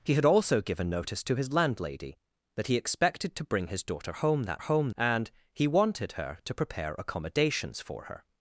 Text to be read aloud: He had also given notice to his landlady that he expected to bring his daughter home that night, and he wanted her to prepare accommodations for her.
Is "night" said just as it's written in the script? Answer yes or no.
no